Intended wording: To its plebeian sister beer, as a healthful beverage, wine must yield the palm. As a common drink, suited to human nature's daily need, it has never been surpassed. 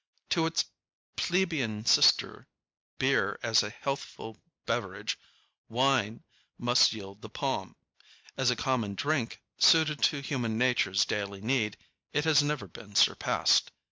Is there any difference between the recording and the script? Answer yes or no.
no